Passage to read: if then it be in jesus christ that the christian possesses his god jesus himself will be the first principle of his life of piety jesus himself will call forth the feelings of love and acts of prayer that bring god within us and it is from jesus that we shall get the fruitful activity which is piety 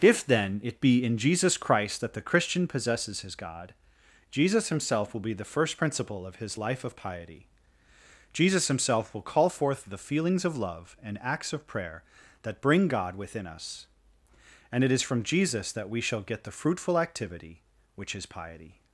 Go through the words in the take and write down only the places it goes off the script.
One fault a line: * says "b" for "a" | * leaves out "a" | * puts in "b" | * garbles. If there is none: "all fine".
all fine